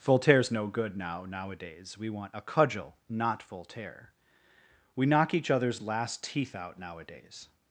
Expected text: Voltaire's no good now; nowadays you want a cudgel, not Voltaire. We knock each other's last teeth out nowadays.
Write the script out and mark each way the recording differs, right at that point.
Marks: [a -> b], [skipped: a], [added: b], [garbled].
Voltaire's no good now; nowadays [you -> we] want a cudgel, not Voltaire. We knock each other's last teeth out nowadays.